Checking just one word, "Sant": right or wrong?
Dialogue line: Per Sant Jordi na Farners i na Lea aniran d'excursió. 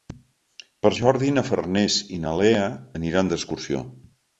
wrong